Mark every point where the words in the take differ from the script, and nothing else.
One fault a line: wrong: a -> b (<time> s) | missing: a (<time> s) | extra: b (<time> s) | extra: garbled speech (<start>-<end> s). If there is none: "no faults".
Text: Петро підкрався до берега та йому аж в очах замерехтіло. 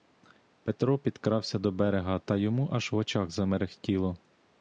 no faults